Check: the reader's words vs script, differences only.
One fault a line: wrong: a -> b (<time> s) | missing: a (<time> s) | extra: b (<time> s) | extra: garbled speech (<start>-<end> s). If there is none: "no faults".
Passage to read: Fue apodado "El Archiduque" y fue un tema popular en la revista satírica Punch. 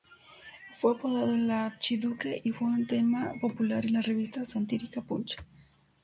no faults